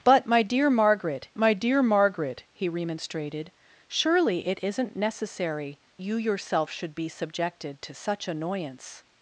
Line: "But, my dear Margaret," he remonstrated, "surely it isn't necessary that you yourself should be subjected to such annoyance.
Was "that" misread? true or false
true